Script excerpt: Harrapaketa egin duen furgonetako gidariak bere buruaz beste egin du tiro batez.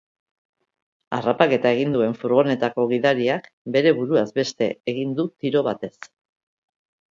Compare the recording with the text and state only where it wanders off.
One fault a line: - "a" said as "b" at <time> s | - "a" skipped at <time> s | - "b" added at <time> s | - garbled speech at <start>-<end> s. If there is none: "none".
none